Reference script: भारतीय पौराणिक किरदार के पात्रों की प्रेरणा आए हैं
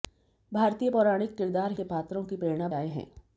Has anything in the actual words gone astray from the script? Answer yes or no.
no